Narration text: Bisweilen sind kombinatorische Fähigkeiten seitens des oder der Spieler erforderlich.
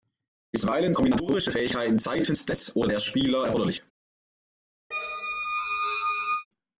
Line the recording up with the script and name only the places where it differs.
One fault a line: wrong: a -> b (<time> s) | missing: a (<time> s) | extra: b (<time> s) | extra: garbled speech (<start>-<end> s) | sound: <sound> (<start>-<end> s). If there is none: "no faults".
missing: sind (0.9 s)
sound: squeak (4.9-6.5 s)